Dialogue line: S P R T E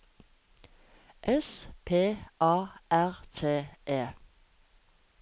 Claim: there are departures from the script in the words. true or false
true